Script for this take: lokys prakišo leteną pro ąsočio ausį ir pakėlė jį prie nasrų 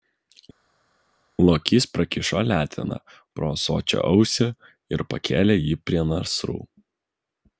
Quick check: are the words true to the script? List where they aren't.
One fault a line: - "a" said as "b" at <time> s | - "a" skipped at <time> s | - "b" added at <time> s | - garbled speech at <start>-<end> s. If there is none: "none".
none